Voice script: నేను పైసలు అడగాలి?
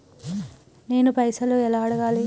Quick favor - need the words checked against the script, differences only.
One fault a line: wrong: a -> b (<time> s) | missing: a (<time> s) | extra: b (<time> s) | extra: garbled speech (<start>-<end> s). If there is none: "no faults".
extra: ఎలా (1.5 s)